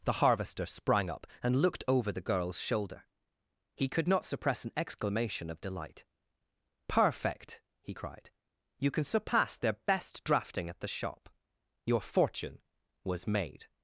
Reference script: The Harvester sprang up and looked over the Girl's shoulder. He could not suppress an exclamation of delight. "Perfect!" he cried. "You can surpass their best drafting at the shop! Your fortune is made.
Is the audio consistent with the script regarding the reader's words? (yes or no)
no